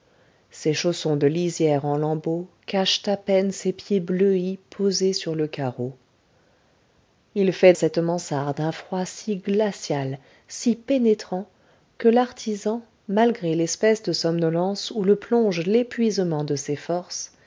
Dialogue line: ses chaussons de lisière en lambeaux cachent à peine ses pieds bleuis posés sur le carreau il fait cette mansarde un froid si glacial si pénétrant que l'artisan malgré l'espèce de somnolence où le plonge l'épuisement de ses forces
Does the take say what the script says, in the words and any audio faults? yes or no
yes